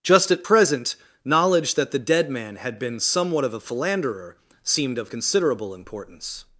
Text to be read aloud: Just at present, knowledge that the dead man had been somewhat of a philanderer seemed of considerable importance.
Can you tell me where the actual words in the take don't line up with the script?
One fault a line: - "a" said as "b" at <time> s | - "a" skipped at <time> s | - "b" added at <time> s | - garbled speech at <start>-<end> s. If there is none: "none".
none